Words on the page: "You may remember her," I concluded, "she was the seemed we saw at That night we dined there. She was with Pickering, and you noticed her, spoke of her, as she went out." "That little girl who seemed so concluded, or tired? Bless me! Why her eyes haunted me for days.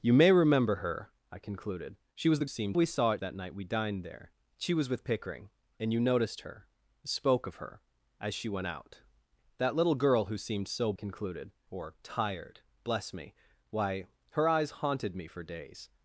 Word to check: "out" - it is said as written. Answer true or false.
true